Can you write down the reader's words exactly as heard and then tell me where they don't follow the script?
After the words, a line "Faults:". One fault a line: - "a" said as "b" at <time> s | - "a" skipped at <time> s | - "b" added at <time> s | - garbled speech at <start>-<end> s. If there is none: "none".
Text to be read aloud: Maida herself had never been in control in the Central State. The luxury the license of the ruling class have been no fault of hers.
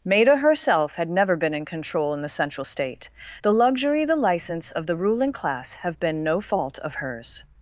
Maida herself had never been in control in the Central State. The luxury the license of the ruling class have been no fault of hers.
Faults:
none